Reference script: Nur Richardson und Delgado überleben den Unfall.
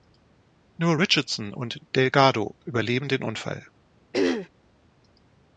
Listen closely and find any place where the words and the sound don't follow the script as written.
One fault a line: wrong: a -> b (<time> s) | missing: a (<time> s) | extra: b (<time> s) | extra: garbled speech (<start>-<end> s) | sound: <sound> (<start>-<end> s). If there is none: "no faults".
sound: throat clearing (4.1-4.5 s)